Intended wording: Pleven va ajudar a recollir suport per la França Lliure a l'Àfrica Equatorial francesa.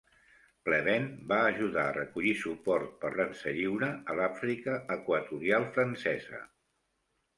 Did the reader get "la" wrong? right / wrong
wrong